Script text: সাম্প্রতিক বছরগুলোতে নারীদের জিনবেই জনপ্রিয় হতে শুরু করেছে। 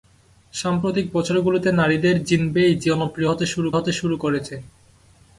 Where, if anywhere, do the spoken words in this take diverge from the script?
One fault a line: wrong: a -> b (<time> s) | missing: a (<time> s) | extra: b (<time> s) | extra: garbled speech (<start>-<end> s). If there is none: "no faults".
extra: হতে শুরু (3.8 s)